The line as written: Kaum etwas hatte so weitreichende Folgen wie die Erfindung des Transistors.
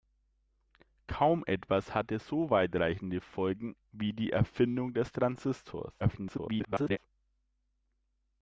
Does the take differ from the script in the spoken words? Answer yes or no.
yes